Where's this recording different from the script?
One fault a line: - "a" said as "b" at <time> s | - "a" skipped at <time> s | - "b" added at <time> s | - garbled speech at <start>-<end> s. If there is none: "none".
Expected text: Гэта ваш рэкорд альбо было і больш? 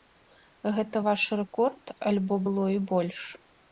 none